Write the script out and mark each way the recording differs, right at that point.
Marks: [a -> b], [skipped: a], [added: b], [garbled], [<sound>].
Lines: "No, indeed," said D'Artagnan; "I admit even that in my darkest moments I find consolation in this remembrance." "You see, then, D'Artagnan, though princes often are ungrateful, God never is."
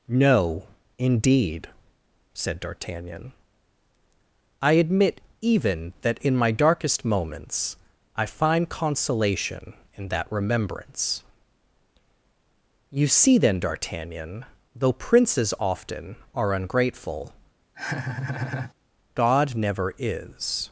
"No, indeed," said D'Artagnan; "I admit even that in my darkest moments I find consolation in [this -> that] remembrance." "You see, then, D'Artagnan, though princes often are ungrateful, [laugh] God never is."